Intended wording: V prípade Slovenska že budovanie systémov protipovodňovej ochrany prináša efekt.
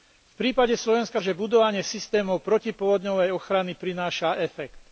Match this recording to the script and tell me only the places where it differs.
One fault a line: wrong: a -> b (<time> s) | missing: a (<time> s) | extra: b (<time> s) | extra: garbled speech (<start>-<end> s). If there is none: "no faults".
no faults